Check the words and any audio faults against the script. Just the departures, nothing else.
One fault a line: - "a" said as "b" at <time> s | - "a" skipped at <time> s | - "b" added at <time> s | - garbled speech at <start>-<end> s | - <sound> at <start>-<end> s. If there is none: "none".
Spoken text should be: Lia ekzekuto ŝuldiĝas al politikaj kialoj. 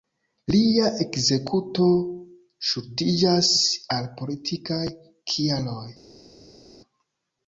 none